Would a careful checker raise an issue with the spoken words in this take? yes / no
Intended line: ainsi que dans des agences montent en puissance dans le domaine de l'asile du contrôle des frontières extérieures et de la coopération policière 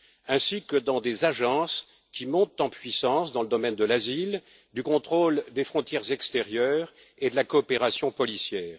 yes